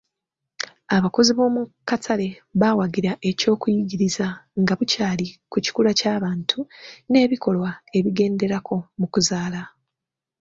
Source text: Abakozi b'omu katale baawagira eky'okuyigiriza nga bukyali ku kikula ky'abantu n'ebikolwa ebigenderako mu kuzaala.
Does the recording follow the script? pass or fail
pass